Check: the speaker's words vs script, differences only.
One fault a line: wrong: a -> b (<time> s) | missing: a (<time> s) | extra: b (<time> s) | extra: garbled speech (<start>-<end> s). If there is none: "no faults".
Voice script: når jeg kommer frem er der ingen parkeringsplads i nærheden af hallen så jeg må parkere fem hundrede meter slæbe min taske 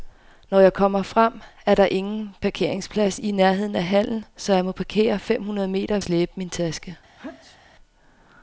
no faults